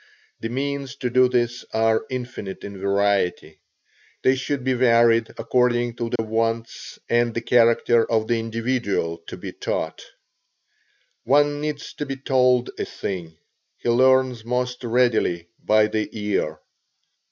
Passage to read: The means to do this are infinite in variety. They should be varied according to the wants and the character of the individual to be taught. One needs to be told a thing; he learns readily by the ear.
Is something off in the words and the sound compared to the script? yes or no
yes